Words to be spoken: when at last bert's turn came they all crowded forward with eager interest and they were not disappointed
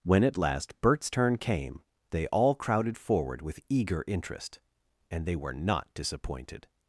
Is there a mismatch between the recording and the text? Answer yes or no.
no